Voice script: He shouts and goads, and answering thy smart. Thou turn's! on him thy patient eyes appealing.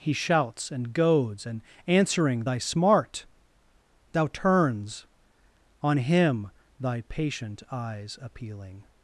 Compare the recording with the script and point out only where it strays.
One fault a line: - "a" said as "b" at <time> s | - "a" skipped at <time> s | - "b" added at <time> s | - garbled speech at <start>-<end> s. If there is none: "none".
none